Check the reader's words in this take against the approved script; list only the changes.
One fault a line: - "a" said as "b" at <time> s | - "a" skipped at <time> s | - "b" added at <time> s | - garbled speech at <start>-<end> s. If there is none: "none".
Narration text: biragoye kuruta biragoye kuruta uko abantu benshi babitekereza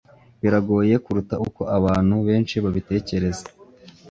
- "biragoye kuruta" skipped at 1.4 s